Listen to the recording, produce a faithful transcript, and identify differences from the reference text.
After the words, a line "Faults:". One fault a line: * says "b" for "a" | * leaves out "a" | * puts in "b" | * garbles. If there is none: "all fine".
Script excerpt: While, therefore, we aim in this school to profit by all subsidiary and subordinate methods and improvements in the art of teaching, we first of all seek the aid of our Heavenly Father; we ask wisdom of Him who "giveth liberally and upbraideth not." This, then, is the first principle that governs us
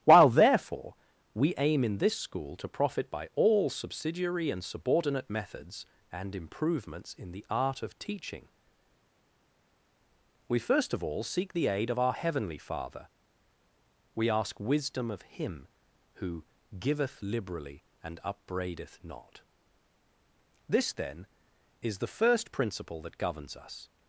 While, therefore, we aim in this school to profit by all subsidiary and subordinate methods and improvements in the art of teaching, we first of all seek the aid of our Heavenly Father; we ask wisdom of Him who "giveth liberally and upbraideth not." This, then, is the first principle that governs us
Faults:
all fine